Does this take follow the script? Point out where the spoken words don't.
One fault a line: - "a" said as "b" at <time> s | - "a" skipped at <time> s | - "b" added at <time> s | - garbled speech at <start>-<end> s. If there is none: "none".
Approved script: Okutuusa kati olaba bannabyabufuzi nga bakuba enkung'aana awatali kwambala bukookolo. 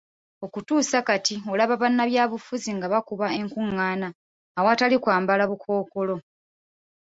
none